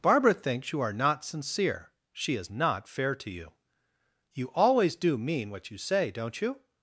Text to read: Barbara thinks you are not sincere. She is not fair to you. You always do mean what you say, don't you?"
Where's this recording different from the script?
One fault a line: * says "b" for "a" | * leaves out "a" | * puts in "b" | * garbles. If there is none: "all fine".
all fine